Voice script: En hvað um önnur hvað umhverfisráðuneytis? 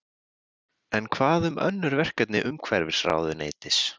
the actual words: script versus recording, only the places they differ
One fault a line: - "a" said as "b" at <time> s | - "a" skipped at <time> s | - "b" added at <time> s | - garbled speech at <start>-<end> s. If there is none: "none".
- "hvað" said as "verkefni" at 2.0 s